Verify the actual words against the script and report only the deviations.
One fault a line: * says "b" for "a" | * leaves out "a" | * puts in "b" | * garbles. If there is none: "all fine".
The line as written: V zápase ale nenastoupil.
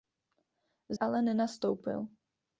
* leaves out "zápase"